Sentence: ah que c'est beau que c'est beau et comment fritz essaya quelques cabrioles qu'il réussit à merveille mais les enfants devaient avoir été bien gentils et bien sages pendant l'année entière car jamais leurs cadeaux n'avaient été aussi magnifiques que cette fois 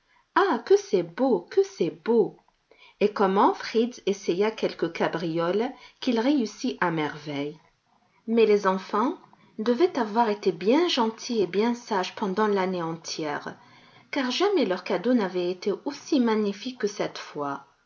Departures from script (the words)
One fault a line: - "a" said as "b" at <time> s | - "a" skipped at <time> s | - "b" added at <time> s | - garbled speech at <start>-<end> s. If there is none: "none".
none